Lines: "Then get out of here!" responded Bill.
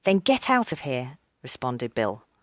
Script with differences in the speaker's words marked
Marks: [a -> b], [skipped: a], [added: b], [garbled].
"Then get out of here!" responded Bill.